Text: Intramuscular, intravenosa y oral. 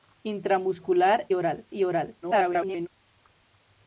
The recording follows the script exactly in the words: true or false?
false